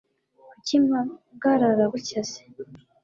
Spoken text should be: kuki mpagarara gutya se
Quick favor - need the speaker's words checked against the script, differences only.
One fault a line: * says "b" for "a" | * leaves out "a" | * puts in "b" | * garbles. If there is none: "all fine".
all fine